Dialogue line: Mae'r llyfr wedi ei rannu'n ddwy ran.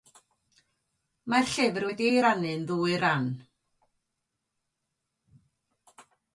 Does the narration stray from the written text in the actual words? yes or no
no